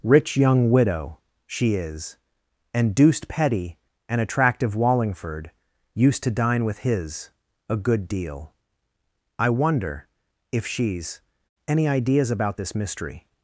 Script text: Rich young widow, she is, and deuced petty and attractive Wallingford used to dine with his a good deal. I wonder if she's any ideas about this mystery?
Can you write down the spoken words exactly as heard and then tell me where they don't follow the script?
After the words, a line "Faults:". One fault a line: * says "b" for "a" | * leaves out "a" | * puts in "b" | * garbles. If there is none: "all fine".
Rich young widow, she is, and deuced petty and attractive Wallingford used to dine with his a good deal. I wonder if she's any ideas about this mystery?
Faults:
all fine